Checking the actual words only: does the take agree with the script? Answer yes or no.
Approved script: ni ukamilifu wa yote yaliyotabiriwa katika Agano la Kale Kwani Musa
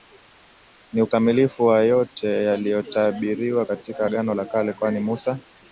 yes